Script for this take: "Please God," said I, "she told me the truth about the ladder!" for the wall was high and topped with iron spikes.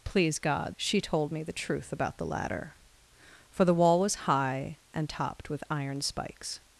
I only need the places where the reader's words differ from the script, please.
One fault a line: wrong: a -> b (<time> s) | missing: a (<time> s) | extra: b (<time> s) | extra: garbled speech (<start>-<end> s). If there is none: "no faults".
missing: said I (0.8 s)